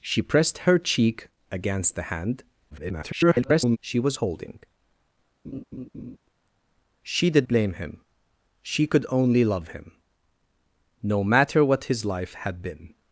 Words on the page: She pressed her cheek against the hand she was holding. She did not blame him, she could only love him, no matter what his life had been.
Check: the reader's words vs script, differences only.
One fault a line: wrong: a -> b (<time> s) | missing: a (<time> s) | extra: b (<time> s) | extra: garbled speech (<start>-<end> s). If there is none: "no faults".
extra: garbled speech (2.7-3.8 s)
missing: not (7.5 s)